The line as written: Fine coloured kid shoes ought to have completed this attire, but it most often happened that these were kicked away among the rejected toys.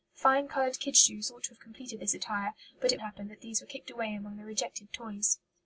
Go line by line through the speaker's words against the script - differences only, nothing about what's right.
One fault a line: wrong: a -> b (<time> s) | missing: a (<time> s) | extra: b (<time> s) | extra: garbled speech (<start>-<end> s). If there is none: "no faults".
missing: most often (3.0 s)